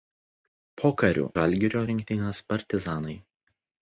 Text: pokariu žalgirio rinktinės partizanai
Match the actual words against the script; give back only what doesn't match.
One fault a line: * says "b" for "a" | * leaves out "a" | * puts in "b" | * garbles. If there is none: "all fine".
all fine